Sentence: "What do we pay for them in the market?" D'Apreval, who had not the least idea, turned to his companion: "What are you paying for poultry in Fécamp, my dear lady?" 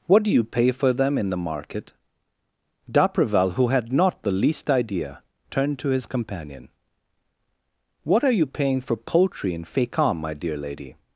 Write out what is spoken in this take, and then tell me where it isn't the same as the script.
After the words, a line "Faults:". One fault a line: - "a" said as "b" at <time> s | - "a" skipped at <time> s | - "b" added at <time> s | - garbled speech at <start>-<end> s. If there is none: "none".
"What do you pay for them in the market?" D'Apreval, who had not the least idea, turned to his companion: "What are you paying for poultry in Fécamp, my dear lady?"
Faults:
- "we" said as "you" at 0.3 s